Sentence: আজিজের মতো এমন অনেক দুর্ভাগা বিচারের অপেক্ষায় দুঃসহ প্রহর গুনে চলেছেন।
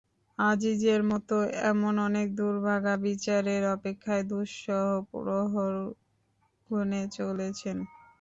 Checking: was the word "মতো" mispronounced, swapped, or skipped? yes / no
no